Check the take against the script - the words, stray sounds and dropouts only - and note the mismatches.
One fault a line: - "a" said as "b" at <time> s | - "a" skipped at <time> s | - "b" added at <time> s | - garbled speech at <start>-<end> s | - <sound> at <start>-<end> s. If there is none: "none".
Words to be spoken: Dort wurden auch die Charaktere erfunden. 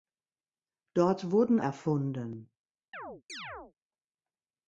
- "auch die Charaktere" skipped at 1.6 s
- chirp at 2.9-3.7 s